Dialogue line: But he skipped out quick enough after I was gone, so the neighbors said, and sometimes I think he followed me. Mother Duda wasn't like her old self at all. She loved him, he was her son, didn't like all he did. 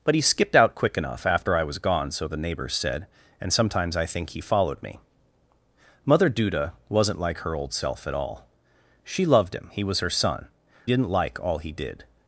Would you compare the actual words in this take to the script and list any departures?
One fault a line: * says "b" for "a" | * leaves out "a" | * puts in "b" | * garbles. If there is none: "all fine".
all fine